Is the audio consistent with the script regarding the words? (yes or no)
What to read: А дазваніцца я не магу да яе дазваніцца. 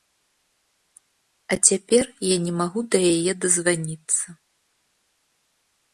no